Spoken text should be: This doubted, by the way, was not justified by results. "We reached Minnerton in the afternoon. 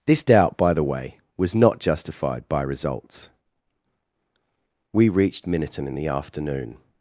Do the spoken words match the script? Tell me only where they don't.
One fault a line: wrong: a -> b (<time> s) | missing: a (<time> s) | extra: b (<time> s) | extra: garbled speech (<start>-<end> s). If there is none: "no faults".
wrong: doubted -> doubt (0.2 s)